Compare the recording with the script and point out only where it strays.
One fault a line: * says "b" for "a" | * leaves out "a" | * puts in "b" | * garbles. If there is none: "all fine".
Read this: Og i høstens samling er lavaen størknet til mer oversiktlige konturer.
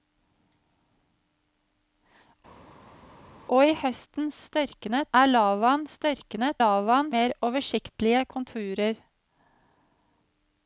* says "størknet" for "samling"
* says "lavaen" for "til"